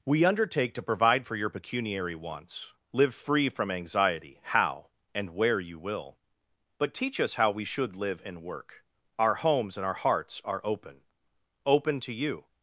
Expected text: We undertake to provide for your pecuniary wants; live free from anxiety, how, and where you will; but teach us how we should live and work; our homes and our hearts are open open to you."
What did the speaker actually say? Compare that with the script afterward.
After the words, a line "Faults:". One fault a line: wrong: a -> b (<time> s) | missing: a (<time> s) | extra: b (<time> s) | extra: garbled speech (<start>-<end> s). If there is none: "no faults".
We undertake to provide for your pecuniary wants; live free from anxiety, how, and where you will; but teach us how we should live and work; our homes and our hearts are open open to you."
Faults:
no faults